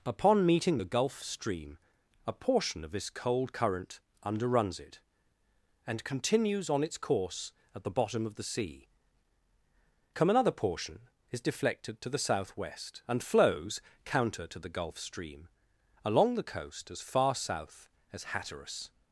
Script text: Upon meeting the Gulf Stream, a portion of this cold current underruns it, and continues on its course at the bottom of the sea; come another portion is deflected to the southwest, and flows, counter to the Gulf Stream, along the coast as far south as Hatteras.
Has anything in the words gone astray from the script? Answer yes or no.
no